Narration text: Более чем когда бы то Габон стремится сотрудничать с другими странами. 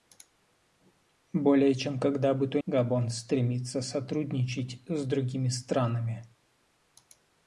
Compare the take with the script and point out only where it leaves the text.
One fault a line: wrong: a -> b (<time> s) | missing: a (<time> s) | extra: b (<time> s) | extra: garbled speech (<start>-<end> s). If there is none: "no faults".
no faults